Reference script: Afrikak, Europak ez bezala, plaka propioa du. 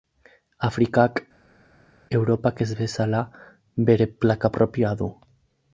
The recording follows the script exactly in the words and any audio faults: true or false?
false